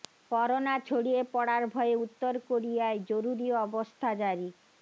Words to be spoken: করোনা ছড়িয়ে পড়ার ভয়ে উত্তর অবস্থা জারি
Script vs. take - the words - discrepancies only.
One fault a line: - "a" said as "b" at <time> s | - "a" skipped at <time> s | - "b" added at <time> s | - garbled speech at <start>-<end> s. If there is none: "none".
- "কোরিয়ায় জরুরি" added at 2.5 s